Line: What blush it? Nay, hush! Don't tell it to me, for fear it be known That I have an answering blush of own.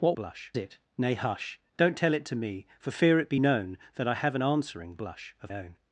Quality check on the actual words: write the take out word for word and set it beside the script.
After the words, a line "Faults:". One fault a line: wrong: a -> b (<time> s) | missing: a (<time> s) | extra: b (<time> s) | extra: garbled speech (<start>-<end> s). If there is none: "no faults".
What blush it? Nay, hush! Don't tell it to me, for fear it be known That I have an answering blush of own.
Faults:
no faults